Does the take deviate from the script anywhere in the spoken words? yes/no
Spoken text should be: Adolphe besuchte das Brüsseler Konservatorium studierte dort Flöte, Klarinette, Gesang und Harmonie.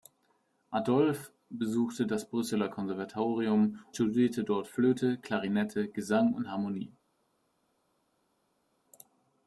no